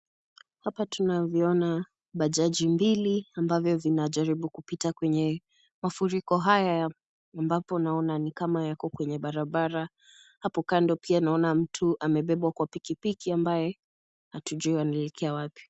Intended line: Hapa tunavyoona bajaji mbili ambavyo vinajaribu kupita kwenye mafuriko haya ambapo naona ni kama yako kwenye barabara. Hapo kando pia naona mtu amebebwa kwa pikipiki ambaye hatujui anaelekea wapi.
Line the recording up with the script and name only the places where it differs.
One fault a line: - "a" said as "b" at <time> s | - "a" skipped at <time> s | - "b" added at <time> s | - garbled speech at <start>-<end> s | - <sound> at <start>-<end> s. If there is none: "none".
none